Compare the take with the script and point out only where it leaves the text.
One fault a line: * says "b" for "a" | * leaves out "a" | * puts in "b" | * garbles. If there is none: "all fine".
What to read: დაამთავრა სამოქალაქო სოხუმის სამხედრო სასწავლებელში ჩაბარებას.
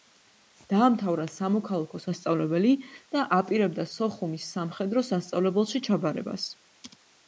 * puts in "სასწავლებელი და აპირებდა"